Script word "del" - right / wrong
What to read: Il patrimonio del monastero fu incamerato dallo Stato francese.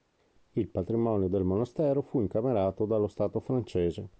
right